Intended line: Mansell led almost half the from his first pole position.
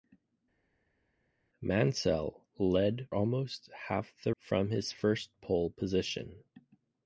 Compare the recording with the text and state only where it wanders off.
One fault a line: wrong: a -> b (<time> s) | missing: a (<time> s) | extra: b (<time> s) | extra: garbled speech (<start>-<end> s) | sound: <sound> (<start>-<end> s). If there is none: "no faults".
no faults